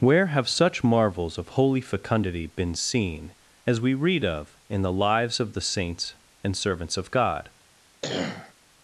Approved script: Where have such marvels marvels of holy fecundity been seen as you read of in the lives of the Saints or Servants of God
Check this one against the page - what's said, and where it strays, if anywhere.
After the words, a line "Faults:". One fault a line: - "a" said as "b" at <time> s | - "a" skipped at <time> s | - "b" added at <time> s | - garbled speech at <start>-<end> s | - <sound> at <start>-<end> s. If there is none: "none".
Where have such marvels of holy fecundity been seen as we read of in the lives of the Saints and Servants of God
Faults:
- "marvels" skipped at 1.4 s
- "you" said as "we" at 3.8 s
- "or" said as "and" at 6.4 s
- cough at 8.0-8.5 s